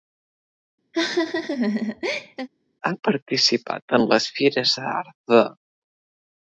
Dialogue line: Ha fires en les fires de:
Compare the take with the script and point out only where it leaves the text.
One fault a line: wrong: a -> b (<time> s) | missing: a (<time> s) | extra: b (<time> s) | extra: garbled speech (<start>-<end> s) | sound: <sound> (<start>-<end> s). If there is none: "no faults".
sound: laugh (0.9-2.5 s)
wrong: fires -> participat (3.1 s)
extra: d'art (4.8 s)